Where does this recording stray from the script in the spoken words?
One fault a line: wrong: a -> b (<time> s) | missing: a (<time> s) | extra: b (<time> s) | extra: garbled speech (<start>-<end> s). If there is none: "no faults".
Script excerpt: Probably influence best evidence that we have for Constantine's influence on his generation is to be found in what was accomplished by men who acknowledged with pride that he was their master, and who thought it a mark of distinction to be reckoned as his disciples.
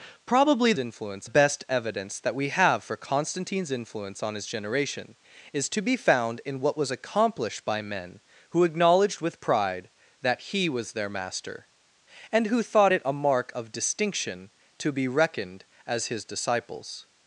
no faults